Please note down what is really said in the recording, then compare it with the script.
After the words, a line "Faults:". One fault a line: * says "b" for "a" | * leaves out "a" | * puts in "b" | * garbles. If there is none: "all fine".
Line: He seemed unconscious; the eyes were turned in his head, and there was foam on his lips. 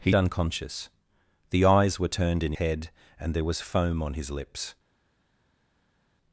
He unconscious; the eyes were turned in head, and there was foam on his lips.
Faults:
* leaves out "seemed"
* leaves out "his"